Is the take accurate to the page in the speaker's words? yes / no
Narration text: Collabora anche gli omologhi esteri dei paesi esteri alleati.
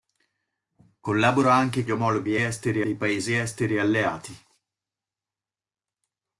yes